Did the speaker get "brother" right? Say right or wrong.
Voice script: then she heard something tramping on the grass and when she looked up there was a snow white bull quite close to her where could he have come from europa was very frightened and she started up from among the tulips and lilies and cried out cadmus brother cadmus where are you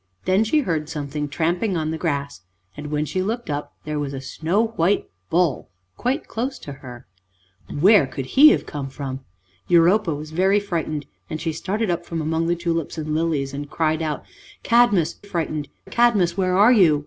wrong